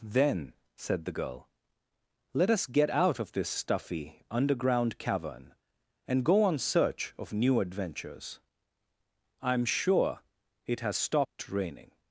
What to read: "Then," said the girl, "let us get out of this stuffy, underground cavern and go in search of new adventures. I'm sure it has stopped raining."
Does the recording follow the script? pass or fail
fail